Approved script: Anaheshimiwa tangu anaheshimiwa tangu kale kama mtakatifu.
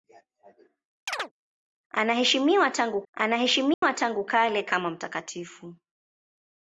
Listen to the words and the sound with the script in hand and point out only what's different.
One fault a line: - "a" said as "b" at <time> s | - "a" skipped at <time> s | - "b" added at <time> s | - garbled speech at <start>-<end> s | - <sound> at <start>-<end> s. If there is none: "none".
- chirp at 1.1-1.3 s
- dropout at 3.7-3.8 s